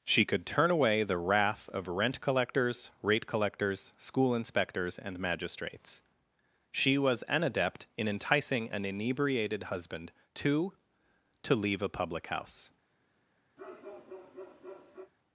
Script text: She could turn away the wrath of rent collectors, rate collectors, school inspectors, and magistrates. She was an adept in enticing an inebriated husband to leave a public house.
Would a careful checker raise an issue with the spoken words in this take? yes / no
yes